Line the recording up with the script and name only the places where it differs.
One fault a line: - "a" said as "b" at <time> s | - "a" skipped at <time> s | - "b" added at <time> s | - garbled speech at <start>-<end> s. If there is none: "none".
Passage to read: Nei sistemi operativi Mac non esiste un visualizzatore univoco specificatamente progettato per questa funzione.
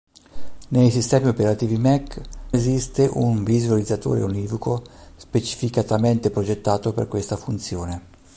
- "non" skipped at 2.2 s